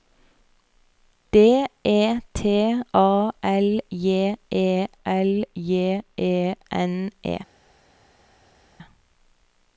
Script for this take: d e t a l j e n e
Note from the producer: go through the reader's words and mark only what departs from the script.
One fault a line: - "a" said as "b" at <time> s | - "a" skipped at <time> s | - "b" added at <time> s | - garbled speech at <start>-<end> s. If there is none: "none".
- "l j e" added at 5.1 s